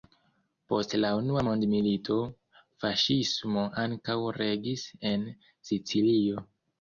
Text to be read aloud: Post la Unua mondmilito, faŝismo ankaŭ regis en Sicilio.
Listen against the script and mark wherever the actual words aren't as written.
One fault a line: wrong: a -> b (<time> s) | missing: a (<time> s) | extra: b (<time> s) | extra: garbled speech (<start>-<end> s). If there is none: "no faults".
no faults